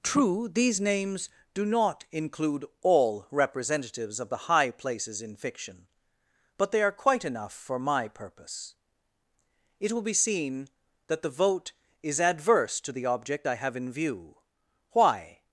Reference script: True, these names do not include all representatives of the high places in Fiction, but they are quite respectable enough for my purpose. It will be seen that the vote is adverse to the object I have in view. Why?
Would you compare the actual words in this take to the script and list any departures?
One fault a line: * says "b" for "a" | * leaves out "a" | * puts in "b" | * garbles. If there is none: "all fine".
* leaves out "respectable"